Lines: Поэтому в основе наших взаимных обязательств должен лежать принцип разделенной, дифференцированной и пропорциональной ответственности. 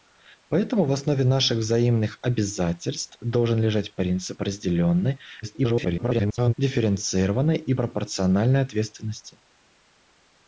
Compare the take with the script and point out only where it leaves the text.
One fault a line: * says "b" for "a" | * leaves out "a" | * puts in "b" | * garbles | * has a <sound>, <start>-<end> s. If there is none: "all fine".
* garbles